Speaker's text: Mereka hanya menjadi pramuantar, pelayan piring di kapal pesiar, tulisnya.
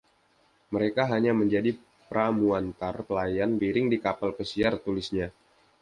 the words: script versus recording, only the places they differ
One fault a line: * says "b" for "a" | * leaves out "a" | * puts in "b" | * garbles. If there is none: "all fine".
all fine